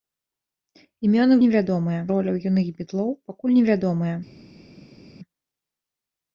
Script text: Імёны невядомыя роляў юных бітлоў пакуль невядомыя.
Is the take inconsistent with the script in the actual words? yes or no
no